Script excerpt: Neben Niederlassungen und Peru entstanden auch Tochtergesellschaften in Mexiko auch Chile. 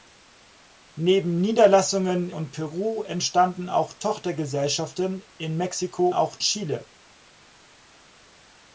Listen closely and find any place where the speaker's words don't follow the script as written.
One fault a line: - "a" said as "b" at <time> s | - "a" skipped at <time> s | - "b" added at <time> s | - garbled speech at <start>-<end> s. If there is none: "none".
none